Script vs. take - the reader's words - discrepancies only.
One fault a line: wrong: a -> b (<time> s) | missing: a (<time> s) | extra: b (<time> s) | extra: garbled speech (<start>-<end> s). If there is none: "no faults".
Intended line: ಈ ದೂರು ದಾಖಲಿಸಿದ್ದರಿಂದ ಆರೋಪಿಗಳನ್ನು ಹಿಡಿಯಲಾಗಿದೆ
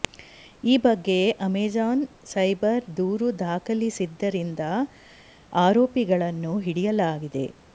extra: ಬಗ್ಗೆ ಅಮೆಜಾನ್ ಸೈಬರ್ (0.8 s)